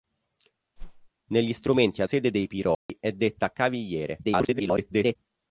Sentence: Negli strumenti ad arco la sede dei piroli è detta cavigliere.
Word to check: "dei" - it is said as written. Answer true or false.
true